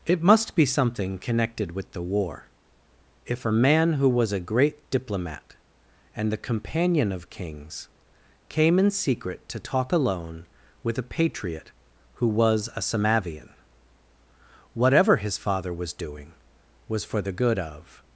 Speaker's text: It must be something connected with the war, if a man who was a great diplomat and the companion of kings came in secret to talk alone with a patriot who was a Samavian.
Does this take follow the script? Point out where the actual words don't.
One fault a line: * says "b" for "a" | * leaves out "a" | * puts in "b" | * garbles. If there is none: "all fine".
* puts in "Whatever his father was doing was for the good of"